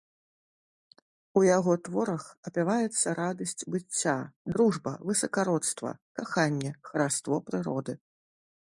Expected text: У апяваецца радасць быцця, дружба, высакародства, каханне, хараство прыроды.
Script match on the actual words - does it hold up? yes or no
no